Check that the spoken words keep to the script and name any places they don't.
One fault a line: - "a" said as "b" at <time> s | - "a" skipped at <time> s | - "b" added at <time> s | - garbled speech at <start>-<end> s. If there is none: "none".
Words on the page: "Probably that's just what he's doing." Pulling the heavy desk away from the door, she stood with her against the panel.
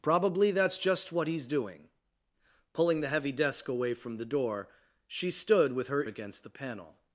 none